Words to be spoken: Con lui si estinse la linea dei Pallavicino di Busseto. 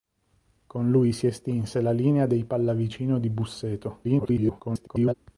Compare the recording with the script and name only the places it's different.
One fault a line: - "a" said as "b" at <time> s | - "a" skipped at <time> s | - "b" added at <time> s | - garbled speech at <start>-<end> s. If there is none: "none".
- garbled speech at 4.0-5.1 s